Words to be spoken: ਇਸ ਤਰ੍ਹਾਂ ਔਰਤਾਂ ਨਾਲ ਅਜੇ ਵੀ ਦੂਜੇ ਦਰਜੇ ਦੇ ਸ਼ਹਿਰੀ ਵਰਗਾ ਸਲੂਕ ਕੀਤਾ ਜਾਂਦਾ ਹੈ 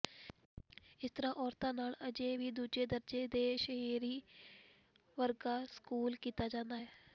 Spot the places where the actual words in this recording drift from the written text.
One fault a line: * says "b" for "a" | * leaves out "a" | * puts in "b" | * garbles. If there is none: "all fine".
all fine